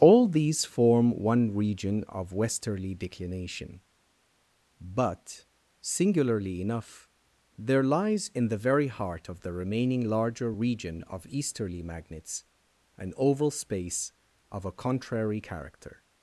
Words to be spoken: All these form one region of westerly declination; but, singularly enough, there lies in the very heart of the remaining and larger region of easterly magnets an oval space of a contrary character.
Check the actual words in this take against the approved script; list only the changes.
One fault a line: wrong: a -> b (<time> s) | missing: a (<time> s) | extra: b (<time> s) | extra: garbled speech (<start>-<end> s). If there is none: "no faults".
missing: and (10.1 s)